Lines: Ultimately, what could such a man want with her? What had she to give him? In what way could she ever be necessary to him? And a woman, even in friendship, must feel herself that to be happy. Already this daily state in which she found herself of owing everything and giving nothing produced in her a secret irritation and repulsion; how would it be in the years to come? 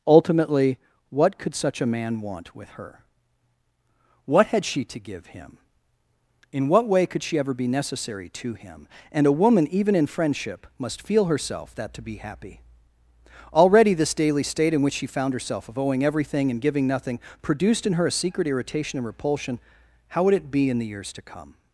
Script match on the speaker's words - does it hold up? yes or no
yes